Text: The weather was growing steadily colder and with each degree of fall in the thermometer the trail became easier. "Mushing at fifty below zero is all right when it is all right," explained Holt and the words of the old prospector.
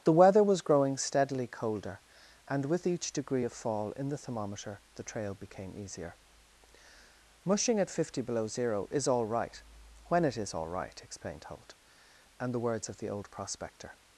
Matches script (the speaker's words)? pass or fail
pass